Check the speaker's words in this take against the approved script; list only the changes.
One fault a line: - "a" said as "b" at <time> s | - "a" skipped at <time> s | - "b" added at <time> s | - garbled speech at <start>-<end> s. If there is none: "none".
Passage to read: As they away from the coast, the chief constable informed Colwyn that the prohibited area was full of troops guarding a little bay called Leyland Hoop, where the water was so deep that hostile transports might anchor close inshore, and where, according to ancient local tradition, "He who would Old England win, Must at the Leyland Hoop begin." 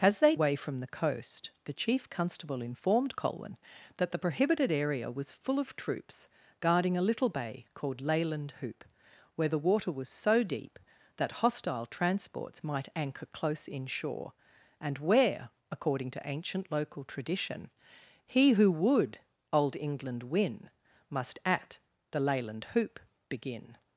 none